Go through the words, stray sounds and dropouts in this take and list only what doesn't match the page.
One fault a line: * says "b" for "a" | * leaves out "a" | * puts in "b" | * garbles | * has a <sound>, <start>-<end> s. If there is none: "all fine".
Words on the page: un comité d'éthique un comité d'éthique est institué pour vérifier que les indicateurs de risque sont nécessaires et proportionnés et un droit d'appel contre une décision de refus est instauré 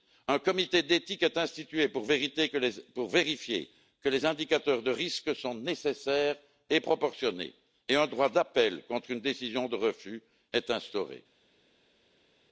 * leaves out "un comité d'éthique"